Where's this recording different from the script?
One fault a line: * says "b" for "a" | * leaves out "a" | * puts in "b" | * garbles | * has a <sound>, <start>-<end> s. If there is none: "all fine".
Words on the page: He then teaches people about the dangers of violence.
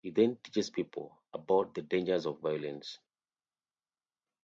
all fine